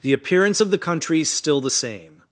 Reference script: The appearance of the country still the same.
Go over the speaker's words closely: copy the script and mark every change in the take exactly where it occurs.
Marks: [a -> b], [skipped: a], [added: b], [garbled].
The appearance of the country [added: is] still the same.